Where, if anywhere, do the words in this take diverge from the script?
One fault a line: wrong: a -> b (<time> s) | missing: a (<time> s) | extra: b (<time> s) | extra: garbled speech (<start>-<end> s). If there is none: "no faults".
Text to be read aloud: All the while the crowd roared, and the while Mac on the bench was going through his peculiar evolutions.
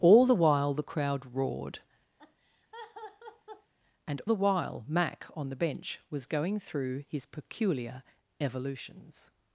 no faults